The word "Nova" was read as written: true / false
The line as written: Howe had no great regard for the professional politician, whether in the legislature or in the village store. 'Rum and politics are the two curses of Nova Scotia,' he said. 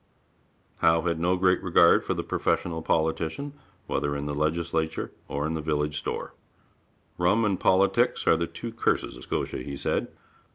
false